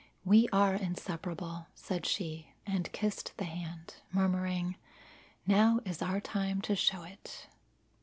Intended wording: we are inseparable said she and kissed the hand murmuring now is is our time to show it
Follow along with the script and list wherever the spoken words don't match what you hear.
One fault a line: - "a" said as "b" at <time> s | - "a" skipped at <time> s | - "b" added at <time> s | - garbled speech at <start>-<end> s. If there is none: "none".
- "is" skipped at 6.0 s